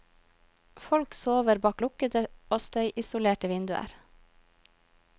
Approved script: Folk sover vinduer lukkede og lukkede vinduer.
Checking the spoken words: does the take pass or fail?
fail